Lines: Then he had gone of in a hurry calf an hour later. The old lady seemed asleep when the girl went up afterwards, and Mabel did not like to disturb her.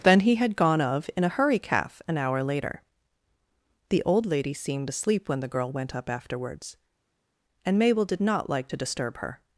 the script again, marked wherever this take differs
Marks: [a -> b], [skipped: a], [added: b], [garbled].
Then he had gone of in a hurry calf an hour later. The old lady seemed asleep when the girl went up afterwards, and Mabel did not like to disturb her.